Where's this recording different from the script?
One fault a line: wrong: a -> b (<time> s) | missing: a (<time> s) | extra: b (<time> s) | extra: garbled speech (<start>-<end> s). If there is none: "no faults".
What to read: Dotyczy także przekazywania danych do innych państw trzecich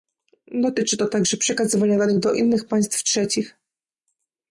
extra: to (1.0 s)